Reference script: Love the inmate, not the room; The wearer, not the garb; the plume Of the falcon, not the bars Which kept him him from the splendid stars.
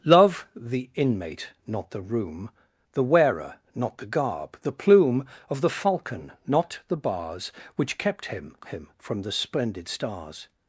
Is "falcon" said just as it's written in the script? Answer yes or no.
yes